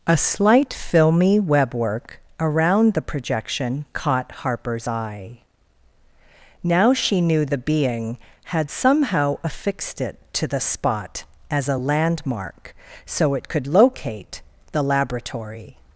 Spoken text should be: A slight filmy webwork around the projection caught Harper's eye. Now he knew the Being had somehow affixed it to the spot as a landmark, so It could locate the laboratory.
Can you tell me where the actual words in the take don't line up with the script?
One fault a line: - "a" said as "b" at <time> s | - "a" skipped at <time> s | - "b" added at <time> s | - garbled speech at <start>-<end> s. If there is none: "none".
- "he" said as "she" at 6.9 s